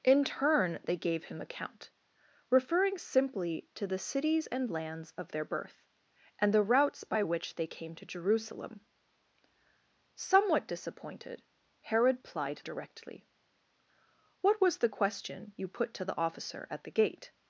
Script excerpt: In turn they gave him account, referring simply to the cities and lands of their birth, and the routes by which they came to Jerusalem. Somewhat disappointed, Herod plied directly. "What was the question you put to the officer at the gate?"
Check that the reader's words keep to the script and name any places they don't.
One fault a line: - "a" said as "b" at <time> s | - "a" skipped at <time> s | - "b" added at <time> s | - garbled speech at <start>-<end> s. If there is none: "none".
none